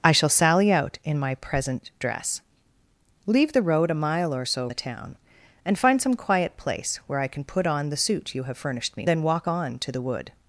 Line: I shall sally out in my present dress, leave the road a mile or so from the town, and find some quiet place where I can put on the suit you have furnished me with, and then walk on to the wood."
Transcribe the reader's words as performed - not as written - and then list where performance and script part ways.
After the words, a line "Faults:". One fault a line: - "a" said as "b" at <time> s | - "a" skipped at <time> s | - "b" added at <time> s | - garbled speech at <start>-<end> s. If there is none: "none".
I shall sally out in my present dress, leave the road a mile or so the town, and find some quiet place where I can put on the suit you have furnished me then walk on to the wood."
Faults:
- "from" skipped at 4.7 s
- "with and" skipped at 9.1 s